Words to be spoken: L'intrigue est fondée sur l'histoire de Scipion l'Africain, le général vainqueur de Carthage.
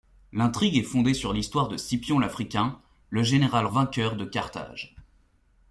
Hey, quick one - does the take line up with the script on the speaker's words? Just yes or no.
yes